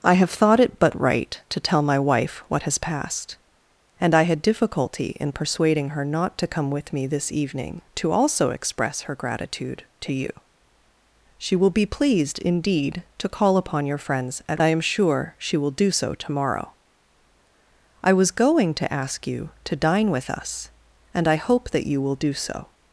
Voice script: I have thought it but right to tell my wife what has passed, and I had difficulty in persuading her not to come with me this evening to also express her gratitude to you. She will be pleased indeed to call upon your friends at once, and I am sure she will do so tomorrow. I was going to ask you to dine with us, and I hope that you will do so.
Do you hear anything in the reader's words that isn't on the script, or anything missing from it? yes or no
yes